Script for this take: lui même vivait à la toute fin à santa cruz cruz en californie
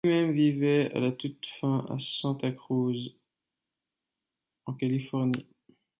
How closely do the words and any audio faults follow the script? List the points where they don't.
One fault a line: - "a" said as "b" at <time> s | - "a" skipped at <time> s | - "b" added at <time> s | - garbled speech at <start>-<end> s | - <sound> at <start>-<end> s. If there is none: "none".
- "cruz" skipped at 3.1 s